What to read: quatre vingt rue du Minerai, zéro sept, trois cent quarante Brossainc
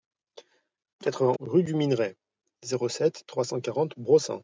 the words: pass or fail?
pass